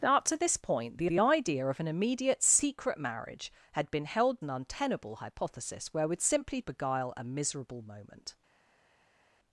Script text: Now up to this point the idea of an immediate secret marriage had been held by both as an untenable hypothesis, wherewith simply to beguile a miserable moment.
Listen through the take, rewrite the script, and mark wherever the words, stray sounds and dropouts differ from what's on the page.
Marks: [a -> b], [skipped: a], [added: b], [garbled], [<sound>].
Now up to this point the [added: the] idea of an immediate secret marriage had been held [skipped: by both as] an untenable hypothesis, wherewith simply [skipped: to] beguile a miserable moment.